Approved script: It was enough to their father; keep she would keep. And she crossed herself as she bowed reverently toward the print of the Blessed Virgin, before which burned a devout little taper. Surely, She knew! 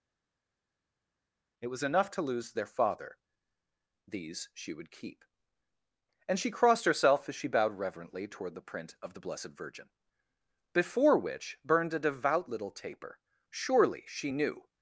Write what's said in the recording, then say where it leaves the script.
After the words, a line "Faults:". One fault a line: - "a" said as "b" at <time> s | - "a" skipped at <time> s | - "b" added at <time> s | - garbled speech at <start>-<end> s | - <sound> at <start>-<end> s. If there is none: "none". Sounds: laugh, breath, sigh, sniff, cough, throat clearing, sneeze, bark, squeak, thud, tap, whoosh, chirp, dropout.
It was enough to lose their father; these she would keep. And she crossed herself as she bowed reverently toward the print of the Blessed Virgin, before which burned a devout little taper. Surely, She knew!
Faults:
- "lose" added at 2.2 s
- "keep" said as "these" at 4.1 s